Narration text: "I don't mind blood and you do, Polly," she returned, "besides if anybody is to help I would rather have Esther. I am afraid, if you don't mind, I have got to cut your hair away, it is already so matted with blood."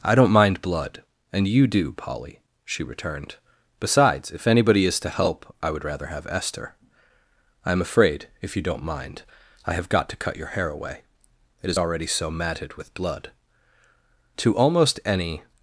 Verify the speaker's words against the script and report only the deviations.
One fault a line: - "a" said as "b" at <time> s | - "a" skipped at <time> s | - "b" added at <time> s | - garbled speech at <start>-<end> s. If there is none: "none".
- "To almost any" added at 14.4 s